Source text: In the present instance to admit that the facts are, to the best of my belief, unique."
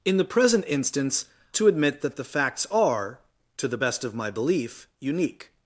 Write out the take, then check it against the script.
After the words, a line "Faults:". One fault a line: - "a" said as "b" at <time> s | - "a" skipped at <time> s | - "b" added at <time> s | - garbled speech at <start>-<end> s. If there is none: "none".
In the present instance to admit that the facts are, to the best of my belief, unique."
Faults:
none